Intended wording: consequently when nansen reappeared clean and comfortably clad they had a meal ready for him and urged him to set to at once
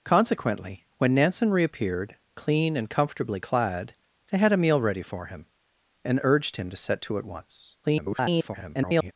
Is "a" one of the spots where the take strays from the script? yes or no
no